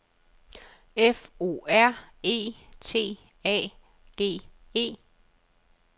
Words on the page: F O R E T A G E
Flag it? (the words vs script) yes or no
no